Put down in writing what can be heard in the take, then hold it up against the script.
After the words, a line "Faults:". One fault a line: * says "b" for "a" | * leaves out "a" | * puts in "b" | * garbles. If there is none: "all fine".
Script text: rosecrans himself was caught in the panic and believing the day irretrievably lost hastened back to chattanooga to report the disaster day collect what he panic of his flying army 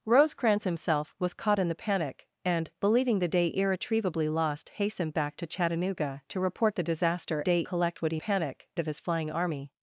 rosecrans himself was caught in the panic and believing the day irretrievably lost hastened back to chattanooga to report the disaster day collect what he panic of his flying army
Faults:
all fine